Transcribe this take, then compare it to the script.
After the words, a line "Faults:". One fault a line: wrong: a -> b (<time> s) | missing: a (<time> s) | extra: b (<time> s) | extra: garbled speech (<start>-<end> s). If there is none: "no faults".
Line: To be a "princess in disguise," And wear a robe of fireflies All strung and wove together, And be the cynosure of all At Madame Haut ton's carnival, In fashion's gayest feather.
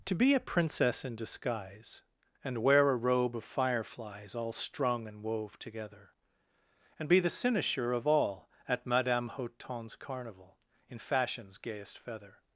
To be a "princess in disguise," And wear a robe of fireflies All strung and wove together, And be the cynosure of all At Madame Haut ton's carnival, In fashion's gayest feather.
Faults:
no faults